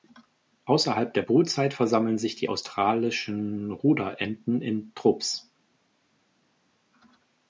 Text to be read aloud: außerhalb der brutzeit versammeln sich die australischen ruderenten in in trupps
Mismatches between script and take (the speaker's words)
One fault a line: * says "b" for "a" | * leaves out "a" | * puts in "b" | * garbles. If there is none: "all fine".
* leaves out "in"